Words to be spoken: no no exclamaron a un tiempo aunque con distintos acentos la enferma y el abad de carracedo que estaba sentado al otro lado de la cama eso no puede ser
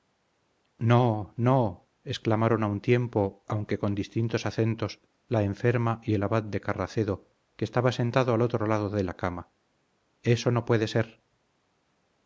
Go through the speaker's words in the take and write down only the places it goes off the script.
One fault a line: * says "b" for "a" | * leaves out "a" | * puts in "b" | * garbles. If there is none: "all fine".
all fine